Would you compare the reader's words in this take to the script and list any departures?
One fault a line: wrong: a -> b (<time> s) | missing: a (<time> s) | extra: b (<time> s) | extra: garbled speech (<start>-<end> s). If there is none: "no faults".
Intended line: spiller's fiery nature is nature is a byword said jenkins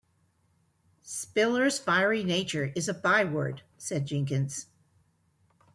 missing: nature is (2.9 s)